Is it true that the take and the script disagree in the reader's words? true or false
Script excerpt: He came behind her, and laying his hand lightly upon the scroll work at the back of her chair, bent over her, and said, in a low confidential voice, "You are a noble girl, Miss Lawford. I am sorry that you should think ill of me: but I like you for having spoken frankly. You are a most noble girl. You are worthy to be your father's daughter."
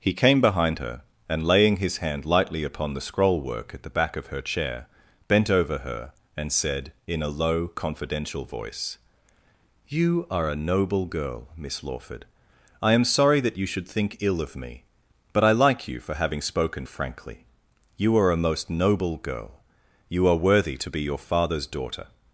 false